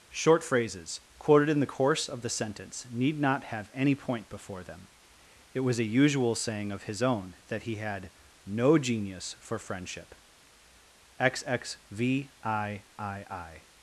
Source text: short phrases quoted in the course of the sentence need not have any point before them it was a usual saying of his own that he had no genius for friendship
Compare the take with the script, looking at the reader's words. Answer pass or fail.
fail